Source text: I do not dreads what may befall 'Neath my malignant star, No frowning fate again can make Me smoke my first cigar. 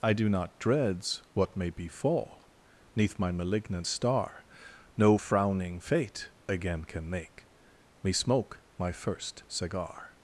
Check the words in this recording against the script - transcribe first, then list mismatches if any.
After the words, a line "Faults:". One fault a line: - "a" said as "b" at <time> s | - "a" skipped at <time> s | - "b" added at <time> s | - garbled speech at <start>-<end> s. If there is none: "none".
I do not dreads what may befall 'Neath my malignant star, No frowning fate again can make Me smoke my first cigar.
Faults:
none